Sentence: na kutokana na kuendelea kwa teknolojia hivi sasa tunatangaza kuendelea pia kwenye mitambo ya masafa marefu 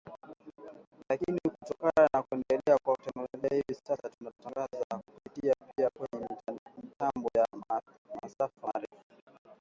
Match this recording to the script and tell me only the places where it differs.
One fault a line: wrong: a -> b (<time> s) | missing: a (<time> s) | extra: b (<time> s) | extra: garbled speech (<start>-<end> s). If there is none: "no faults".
wrong: na -> lakini (1.1 s)
wrong: kuendelea -> kupitia (5.1 s)